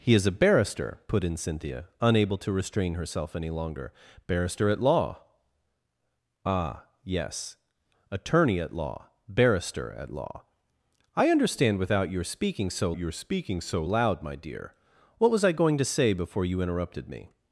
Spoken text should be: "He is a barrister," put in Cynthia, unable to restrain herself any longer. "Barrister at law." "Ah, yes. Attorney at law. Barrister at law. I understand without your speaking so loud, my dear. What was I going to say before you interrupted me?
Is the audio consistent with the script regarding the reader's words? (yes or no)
no